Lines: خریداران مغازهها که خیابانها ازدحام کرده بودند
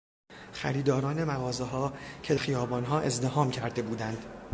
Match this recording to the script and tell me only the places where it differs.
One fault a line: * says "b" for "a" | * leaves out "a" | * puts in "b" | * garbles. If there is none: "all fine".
all fine